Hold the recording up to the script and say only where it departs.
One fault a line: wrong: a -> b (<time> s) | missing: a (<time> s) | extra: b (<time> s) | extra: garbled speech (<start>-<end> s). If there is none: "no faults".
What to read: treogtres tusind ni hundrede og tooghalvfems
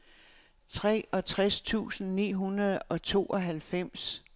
no faults